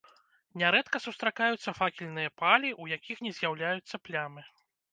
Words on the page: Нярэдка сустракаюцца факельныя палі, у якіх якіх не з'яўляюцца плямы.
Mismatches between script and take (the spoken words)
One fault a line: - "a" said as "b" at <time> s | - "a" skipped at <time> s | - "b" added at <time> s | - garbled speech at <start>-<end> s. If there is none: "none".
- "якіх" skipped at 3.2 s